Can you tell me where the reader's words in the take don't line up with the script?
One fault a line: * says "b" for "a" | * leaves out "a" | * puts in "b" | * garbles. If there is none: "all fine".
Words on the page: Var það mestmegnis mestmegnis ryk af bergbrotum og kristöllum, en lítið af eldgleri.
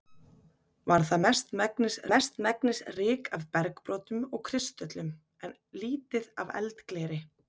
all fine